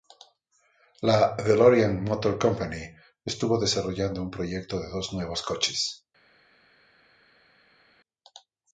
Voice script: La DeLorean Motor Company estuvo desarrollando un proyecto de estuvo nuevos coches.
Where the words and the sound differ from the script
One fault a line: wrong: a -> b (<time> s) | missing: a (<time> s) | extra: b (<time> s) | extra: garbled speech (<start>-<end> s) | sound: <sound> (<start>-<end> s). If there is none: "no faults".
wrong: estuvo -> dos (4.9 s)